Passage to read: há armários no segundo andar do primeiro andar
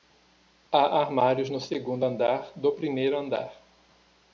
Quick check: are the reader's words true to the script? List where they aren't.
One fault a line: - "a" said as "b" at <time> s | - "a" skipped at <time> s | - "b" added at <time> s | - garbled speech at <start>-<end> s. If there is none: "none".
none